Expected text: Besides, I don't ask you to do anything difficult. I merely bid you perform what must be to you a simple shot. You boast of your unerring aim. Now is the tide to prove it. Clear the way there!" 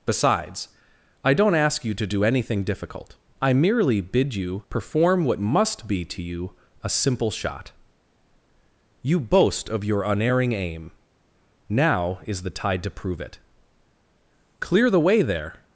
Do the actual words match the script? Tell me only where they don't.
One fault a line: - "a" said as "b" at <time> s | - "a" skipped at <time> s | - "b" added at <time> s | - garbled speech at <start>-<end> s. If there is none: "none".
none